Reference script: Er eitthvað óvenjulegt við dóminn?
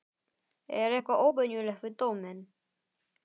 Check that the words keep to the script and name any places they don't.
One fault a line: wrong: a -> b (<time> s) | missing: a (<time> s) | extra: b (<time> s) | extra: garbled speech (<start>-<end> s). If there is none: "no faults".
no faults